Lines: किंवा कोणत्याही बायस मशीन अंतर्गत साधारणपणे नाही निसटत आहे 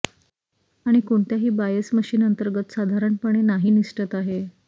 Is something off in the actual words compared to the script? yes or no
yes